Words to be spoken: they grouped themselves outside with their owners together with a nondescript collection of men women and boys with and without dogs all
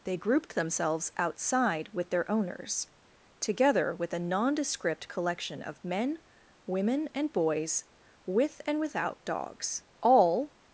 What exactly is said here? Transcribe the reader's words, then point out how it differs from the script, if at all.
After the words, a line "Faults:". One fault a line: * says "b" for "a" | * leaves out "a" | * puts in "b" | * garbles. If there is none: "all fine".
they grouped themselves outside with their owners together with a nondescript collection of men women and boys with and without dogs all
Faults:
all fine